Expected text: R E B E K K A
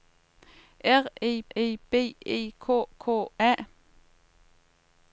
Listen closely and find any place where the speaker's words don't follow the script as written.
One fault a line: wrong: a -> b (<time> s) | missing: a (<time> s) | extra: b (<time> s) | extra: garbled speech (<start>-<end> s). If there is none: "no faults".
extra: E (1.6 s)